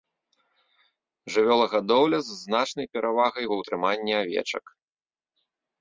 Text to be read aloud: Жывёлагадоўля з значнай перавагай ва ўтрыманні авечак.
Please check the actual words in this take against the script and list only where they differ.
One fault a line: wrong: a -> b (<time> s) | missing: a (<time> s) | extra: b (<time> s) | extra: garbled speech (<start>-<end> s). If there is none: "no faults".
no faults